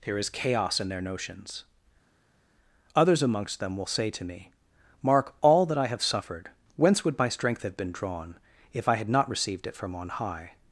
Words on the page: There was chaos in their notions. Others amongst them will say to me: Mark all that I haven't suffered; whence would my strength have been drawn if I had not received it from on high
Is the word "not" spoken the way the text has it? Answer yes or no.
yes